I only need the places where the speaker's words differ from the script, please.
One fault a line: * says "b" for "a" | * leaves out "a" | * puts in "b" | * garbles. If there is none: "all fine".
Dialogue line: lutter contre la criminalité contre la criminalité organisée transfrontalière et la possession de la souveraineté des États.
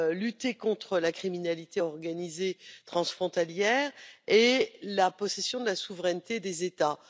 * leaves out "contre la criminalité"